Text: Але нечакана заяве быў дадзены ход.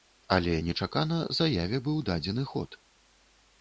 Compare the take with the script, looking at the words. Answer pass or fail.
pass